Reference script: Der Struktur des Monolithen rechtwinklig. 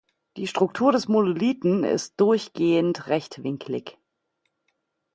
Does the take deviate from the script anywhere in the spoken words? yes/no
yes